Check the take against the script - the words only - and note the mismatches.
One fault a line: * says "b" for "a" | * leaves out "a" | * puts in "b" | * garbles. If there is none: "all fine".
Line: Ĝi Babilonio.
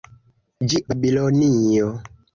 all fine